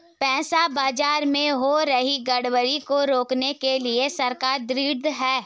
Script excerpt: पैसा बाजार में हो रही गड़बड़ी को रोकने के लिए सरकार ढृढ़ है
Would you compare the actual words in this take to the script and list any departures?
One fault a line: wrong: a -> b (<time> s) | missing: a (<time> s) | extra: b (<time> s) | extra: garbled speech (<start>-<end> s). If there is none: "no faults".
no faults